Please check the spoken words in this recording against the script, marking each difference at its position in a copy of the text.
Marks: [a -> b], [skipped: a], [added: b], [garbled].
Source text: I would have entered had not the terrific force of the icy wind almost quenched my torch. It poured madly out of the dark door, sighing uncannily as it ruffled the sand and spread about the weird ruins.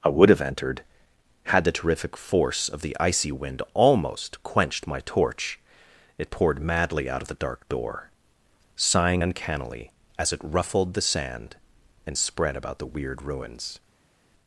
I would have entered had [skipped: not] the terrific force of the icy wind almost quenched my torch. It poured madly out of the dark door, sighing uncannily as it ruffled the sand and spread about the weird ruins.